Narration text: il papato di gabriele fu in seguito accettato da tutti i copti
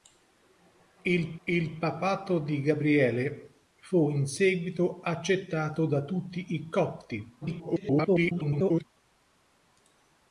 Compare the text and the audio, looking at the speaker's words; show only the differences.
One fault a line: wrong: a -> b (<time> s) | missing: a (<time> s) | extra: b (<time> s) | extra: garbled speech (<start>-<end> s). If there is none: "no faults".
extra: il (1.5 s)
extra: garbled speech (7.4-8.8 s)